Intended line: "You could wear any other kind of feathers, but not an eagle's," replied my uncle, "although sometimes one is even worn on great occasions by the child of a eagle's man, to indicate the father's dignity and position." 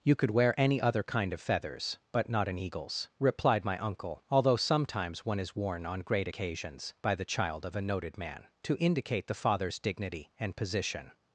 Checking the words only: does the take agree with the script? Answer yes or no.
no